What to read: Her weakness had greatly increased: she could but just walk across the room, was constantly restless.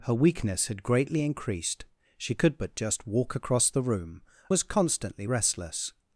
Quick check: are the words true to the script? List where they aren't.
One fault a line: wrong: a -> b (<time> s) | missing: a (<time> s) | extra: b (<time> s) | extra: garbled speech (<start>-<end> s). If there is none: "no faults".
no faults